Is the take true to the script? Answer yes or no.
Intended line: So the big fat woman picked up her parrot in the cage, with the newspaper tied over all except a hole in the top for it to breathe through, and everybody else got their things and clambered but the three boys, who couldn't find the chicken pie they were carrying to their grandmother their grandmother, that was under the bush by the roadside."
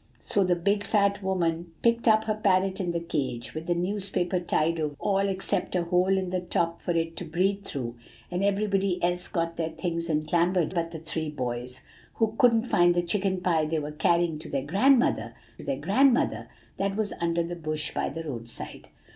yes